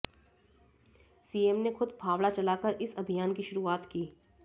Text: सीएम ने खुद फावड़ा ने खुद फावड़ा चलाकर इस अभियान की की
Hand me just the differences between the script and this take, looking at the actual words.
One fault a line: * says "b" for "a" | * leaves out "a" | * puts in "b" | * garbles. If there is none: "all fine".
* leaves out "ने खुद फावड़ा"
* puts in "शुरुआत"